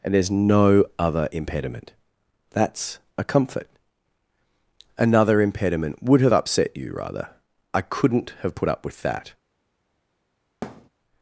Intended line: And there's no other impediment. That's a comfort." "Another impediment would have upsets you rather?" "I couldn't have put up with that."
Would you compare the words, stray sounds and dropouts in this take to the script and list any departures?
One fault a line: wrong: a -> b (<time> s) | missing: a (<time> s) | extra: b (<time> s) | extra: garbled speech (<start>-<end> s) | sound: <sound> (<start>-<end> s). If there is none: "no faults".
wrong: upsets -> upset (6.3 s)
sound: thud (10.6-10.9 s)